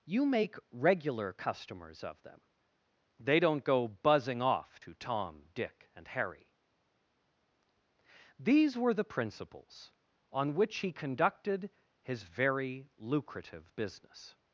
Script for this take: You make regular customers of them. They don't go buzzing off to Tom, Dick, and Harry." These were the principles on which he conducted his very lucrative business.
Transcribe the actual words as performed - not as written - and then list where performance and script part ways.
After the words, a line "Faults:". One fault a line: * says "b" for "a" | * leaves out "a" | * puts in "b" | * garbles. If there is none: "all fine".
You make regular customers of them. They don't go buzzing off to Tom, Dick, and Harry." These were the principles on which he conducted his very lucrative business.
Faults:
all fine